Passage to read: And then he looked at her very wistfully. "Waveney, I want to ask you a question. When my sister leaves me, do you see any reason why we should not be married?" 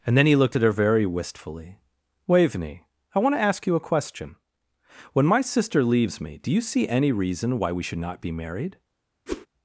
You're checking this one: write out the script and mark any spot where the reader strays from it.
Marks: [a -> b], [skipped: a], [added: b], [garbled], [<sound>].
And then he looked at her very wistfully. "Waveney, I want to ask you a question. When my sister leaves me, do you see any reason why we should not be married?" [whoosh]